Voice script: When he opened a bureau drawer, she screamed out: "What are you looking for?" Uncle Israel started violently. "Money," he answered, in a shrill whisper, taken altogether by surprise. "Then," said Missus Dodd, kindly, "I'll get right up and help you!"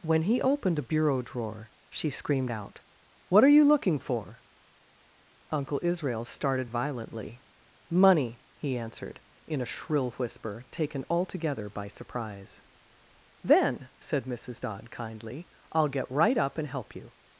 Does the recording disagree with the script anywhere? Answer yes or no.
no